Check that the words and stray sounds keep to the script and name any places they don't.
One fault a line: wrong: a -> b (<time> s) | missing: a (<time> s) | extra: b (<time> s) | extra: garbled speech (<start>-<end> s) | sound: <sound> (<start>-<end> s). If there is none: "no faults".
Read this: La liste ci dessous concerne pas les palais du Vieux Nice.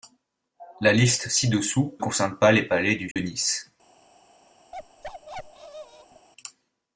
sound: dropout (3.1-3.2 s)
sound: bark (4.7-6.3 s)